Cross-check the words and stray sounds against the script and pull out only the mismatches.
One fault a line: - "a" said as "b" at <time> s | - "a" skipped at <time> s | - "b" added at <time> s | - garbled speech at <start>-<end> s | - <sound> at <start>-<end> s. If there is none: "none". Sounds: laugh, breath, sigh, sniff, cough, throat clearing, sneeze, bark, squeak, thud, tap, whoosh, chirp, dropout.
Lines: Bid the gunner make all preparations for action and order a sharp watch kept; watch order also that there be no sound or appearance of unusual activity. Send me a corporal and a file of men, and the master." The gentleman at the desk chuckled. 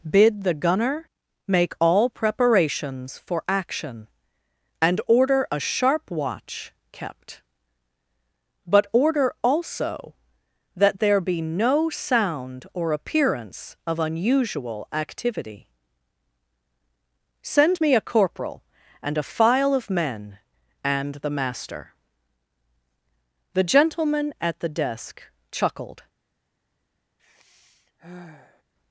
- "watch" said as "but" at 8.6 s
- sigh at 27.2-28.6 s